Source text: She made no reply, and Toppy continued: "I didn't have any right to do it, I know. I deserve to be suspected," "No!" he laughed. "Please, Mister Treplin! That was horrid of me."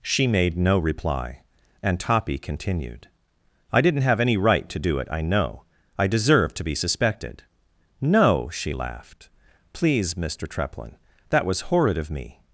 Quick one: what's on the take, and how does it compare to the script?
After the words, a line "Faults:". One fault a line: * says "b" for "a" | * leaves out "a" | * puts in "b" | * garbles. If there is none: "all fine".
She made no reply, and Toppy continued: "I didn't have any right to do it, I know. I deserve to be suspected," "No!" she laughed. "Please, Mister Treplin! That was horrid of me."
Faults:
* says "she" for "he"